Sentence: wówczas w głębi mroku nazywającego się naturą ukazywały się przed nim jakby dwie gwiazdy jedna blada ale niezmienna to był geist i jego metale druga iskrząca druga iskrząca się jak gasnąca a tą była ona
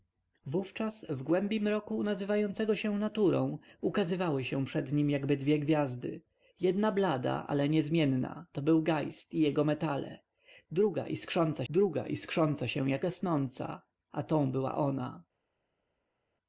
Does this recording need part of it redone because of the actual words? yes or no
no